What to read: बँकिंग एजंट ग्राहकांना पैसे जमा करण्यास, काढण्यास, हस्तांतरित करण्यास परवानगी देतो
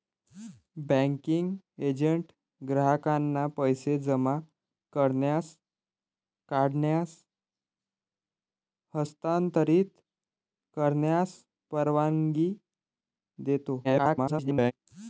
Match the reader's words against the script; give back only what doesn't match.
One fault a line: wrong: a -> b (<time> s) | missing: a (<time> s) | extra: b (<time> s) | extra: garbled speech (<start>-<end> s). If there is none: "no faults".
extra: garbled speech (13.8-14.7 s)